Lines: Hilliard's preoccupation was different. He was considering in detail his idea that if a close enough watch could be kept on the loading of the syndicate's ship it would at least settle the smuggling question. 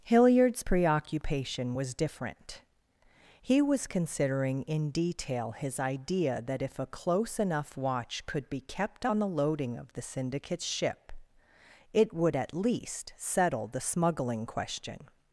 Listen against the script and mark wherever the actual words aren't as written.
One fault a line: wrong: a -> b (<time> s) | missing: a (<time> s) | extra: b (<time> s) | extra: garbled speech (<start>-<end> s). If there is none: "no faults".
no faults